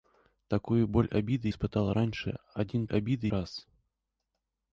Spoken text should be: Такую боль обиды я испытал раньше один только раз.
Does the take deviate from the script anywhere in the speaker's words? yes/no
yes